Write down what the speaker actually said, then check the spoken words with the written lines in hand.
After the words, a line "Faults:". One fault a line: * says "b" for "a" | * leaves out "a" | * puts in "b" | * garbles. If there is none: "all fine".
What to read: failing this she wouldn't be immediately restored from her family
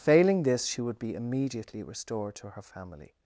failing this she would be immediately restored to her family
Faults:
* says "would" for "wouldn't"
* says "to" for "from"